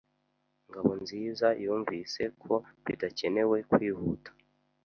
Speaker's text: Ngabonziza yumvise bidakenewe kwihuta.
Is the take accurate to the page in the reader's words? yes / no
no